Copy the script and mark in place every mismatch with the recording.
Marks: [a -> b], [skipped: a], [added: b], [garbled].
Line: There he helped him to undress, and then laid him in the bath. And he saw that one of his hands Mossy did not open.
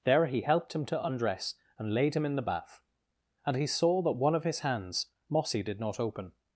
There he helped him to undress, and [skipped: then] laid him in the bath. And he saw that one of his hands Mossy did not open.